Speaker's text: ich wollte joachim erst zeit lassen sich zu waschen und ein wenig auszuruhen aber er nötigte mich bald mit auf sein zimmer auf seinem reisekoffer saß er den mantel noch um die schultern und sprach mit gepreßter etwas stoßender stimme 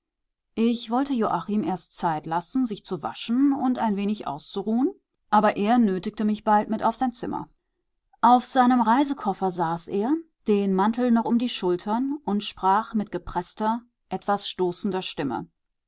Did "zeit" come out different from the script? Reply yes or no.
no